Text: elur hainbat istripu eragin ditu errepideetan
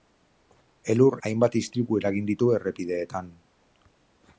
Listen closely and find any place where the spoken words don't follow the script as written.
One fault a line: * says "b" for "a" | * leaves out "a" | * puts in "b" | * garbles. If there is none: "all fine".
all fine